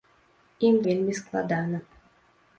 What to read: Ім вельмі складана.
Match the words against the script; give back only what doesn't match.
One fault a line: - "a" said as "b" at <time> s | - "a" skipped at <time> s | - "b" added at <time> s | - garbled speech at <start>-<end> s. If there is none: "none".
none